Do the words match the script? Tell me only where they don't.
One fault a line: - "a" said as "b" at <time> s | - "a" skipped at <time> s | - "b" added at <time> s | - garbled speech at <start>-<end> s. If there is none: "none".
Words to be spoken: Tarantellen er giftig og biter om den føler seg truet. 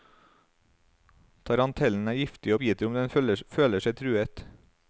- "og" skipped at 2.5 s